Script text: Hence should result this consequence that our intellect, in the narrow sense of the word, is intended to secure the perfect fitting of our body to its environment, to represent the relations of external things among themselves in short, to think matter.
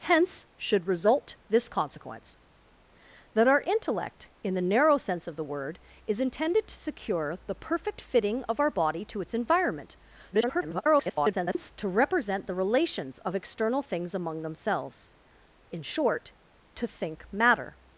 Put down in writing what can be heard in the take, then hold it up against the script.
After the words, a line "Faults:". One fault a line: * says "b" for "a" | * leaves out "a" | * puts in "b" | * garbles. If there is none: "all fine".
Hence should result this consequence that our intellect, in the narrow sense of the word, is intended to secure the perfect fitting of our body to its environment, [garbled] to represent the relations of external things among themselves in short, to think matter.
Faults:
* garbles